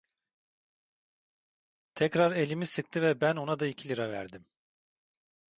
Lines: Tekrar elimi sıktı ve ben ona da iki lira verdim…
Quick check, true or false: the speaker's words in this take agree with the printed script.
true